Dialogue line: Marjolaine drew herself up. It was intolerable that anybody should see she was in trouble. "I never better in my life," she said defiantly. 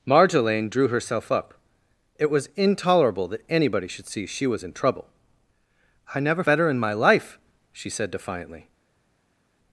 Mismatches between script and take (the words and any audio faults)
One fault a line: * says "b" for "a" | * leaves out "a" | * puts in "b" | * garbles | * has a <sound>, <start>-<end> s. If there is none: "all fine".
all fine